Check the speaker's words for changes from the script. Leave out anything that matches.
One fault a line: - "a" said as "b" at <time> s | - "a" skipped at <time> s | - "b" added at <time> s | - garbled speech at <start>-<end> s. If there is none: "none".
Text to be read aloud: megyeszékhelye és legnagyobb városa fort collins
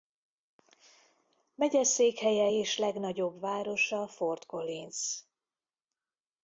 none